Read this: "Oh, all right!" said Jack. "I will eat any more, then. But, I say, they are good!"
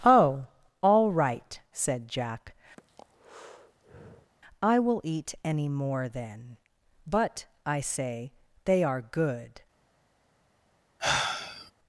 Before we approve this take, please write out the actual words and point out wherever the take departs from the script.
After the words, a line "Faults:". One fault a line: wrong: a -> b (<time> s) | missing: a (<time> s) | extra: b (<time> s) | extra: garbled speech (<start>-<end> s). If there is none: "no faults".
"Oh, all right!" said Jack. "I will eat any more, then. But, I say, they are good!"
Faults:
no faults